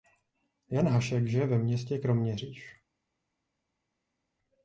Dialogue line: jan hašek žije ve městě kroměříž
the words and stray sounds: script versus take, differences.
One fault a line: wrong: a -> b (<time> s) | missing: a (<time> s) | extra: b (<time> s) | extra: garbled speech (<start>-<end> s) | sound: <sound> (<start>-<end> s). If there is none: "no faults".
no faults